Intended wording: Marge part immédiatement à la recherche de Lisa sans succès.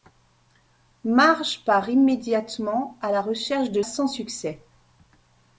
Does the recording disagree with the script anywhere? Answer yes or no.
yes